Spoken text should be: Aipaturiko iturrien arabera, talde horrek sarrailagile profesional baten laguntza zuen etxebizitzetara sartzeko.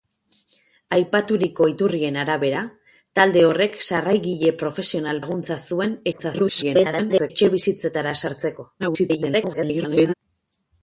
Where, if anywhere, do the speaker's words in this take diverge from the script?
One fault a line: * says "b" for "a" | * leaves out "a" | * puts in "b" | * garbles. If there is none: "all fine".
* leaves out "baten"
* garbles
* garbles